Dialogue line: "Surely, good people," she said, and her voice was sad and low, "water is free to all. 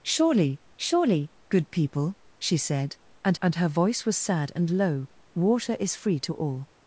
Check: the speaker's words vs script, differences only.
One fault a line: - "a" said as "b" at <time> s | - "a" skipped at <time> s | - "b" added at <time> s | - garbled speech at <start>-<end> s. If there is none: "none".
- "surely" added at 0.8 s
- "and" added at 3.4 s